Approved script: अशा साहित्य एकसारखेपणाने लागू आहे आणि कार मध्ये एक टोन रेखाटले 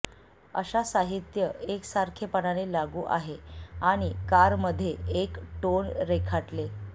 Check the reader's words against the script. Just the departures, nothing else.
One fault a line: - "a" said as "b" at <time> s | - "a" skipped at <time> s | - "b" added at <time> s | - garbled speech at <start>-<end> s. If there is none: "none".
none